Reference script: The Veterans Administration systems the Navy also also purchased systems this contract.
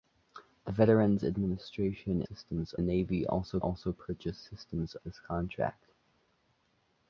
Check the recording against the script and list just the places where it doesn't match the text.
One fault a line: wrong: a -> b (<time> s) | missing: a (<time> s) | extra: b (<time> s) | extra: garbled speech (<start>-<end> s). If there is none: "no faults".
no faults